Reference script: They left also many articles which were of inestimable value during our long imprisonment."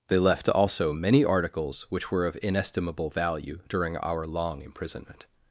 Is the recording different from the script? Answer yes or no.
no